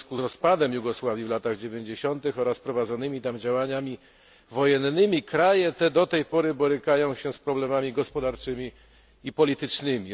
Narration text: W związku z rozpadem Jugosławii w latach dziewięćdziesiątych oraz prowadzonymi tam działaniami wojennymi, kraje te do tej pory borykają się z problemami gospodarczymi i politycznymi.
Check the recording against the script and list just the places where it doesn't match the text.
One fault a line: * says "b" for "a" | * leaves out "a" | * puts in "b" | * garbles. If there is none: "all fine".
all fine